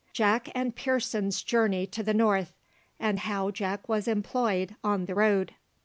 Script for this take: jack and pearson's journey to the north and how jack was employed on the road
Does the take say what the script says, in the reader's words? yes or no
yes